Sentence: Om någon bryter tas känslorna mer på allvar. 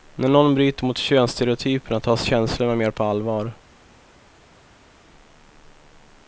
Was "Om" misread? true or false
true